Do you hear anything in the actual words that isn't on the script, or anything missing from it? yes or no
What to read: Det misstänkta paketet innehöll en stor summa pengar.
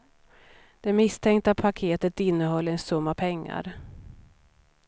yes